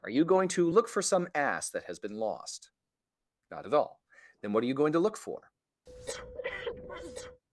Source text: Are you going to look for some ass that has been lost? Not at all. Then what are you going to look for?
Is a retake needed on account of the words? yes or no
no